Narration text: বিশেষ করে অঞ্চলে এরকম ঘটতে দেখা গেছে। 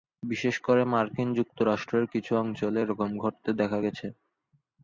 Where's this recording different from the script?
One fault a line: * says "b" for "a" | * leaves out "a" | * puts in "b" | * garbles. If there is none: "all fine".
* puts in "মার্কিন যুক্তরাষ্ট্রের কিছু"